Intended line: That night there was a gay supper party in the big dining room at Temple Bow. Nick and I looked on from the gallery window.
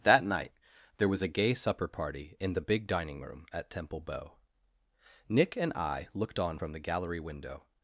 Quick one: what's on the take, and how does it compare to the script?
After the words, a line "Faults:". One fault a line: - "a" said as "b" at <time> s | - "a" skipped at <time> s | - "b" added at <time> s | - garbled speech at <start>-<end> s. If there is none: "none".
That night there was a gay supper party in the big dining room at Temple Bow. Nick and I looked on from the gallery window.
Faults:
none